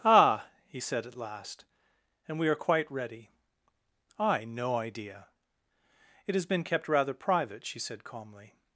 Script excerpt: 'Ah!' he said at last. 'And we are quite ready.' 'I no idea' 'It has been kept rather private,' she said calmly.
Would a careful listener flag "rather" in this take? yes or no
no